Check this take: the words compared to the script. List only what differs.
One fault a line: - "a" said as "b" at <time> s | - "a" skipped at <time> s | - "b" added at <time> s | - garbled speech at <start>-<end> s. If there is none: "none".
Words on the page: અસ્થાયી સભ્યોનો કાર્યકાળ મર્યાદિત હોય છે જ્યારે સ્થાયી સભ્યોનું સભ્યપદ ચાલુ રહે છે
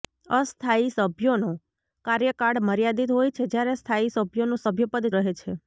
- "ચાલુ" skipped at 5.1 s